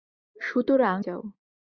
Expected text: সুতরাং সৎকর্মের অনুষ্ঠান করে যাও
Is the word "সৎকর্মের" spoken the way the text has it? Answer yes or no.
no